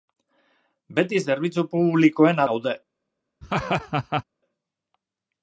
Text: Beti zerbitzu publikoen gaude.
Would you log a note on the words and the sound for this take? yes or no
yes